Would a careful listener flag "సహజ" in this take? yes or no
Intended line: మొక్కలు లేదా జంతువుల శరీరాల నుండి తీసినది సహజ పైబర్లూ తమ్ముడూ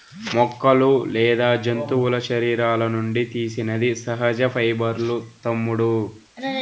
no